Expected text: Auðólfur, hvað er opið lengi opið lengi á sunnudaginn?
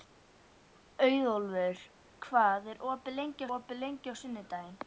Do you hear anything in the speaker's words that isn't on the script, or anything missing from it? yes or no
no